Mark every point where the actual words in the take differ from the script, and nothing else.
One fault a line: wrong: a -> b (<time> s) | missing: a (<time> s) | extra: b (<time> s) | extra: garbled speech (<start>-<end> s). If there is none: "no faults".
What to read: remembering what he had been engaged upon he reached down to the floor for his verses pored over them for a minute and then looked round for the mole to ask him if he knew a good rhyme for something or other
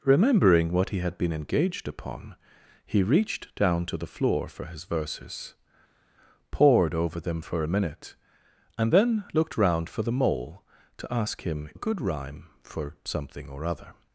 missing: if he knew (11.7 s)